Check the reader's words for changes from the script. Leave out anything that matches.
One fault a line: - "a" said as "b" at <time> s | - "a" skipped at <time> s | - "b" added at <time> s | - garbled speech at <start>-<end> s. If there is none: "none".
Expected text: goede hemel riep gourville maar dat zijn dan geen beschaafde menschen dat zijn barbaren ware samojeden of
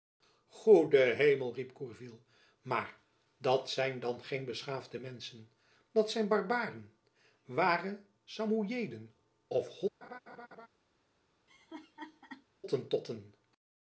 none